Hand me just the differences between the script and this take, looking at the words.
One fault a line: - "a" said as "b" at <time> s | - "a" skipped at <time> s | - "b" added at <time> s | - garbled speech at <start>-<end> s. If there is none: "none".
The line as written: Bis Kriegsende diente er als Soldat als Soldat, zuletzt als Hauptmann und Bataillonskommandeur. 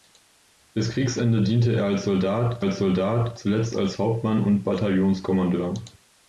none